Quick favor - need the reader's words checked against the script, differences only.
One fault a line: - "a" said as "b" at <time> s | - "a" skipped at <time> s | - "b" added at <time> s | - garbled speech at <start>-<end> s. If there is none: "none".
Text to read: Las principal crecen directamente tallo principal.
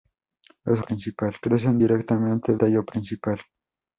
none